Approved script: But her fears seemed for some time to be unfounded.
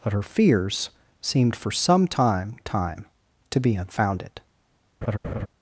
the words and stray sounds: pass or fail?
fail